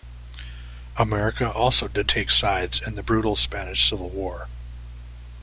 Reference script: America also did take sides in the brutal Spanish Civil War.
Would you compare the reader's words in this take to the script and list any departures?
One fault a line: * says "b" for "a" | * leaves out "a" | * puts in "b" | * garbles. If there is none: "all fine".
all fine